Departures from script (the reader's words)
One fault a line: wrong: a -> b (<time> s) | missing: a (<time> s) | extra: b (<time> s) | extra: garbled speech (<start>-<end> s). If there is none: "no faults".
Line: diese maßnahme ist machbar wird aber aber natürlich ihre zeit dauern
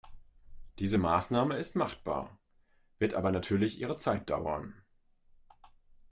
missing: aber (3.3 s)